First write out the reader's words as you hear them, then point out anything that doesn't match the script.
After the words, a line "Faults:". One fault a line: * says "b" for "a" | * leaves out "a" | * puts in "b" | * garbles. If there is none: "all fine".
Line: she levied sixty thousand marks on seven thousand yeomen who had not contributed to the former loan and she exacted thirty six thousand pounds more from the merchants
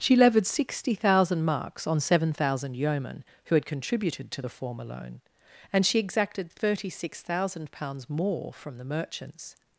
she levied sixty thousand marks on seven thousand yeomen who had contributed to the former loan and she exacted thirty six thousand pounds more from the merchants
Faults:
* leaves out "not"